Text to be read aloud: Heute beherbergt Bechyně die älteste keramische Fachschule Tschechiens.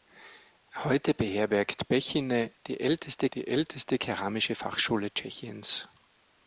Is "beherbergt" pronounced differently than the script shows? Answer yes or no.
no